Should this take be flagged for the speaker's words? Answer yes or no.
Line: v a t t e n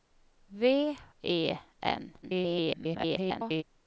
yes